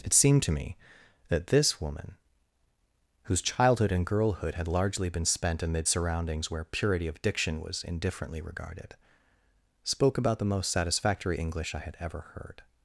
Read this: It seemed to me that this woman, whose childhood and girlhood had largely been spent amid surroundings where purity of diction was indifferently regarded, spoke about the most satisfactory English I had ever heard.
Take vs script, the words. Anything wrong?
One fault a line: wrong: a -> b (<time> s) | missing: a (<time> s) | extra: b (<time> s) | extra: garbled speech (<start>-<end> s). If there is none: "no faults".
no faults